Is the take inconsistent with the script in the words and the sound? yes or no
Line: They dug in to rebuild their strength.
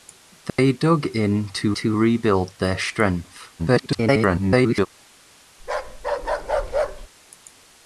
yes